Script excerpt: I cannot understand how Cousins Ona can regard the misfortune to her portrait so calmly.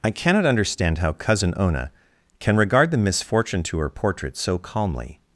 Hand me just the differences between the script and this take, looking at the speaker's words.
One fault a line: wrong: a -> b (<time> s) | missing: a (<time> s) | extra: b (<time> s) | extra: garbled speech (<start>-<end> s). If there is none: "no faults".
wrong: Cousins -> Cousin (1.1 s)